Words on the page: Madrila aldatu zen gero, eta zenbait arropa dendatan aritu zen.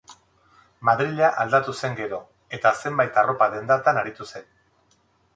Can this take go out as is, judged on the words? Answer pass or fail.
pass